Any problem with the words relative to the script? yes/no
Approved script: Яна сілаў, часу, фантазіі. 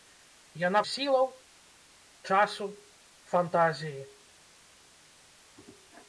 no